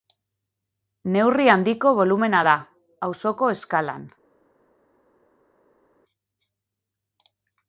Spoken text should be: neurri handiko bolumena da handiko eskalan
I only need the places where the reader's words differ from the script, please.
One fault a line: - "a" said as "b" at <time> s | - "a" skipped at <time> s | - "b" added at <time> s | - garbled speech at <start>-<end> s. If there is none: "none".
- "handiko" said as "auzoko" at 3.1 s